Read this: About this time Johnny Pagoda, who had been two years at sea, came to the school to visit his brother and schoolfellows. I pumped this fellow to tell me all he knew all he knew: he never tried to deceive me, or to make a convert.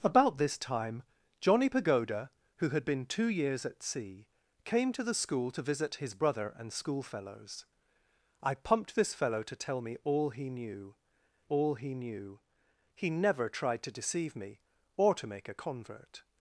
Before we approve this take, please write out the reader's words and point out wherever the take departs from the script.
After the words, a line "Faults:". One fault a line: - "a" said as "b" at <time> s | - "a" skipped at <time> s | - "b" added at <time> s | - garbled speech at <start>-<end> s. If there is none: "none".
About this time Johnny Pagoda, who had been two years at sea, came to the school to visit his brother and schoolfellows. I pumped this fellow to tell me all he knew all he knew: he never tried to deceive me, or to make a convert.
Faults:
none